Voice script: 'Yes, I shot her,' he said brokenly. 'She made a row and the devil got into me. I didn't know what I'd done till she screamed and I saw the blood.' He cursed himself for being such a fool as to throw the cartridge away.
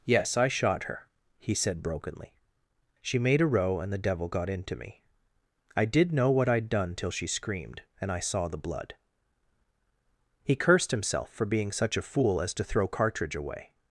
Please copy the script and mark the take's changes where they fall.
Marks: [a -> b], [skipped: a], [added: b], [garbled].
'Yes, I shot her,' he said brokenly. 'She made a row and the devil got into me. I [didn't -> did] know what I'd done till she screamed and I saw the blood.' He cursed himself for being such a fool as to throw [skipped: the] cartridge away.